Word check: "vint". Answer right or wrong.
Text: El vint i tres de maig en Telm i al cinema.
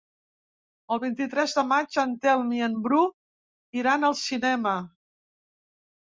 right